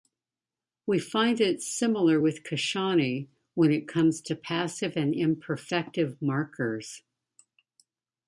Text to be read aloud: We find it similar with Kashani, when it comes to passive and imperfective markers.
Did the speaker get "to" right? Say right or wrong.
right